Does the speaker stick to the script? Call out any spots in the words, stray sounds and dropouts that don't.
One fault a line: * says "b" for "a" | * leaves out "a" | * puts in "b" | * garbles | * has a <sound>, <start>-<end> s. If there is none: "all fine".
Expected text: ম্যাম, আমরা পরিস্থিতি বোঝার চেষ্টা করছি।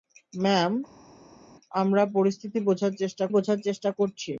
* puts in "বোঝার চেষ্টা"